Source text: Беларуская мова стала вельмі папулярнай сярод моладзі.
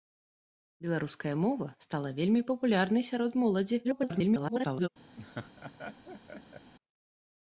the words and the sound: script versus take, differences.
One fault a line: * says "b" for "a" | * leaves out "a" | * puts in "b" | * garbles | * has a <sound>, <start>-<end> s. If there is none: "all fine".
* garbles
* has a laugh, 5.2-6.7 s